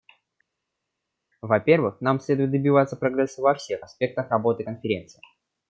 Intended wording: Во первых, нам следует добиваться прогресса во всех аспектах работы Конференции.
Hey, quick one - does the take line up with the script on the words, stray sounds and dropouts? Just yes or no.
yes